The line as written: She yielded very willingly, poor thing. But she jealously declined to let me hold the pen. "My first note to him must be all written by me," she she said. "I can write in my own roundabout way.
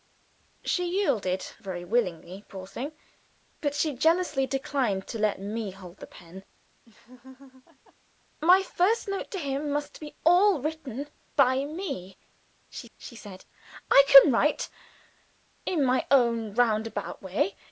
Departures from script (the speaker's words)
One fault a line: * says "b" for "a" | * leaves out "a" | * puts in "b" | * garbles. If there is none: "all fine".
all fine